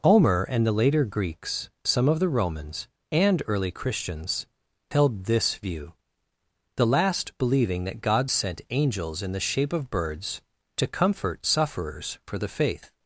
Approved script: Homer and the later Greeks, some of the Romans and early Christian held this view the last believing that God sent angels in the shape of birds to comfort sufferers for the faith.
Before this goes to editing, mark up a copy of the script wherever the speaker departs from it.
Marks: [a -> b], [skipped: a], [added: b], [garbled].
Homer and the later Greeks, some of the Romans and early [Christian -> Christians] held this view the last believing that God sent angels in the shape of birds to comfort sufferers for the faith.